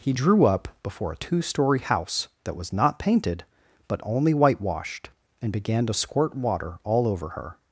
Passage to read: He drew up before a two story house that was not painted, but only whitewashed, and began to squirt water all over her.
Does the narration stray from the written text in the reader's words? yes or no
no